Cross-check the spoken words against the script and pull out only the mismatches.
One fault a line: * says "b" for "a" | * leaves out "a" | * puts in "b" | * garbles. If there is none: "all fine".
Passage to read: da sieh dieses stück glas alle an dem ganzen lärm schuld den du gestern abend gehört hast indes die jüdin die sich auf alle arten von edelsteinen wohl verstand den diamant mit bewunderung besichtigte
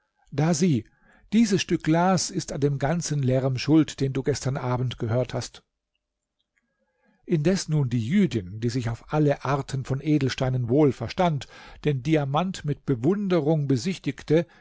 * says "ist" for "alle"
* puts in "nun"